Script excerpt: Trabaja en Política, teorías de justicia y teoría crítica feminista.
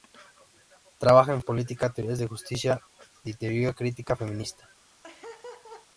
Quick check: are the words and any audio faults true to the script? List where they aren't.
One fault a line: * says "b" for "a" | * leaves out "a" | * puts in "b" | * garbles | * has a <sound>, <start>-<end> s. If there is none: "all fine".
* has a laugh, 5.0-5.9 s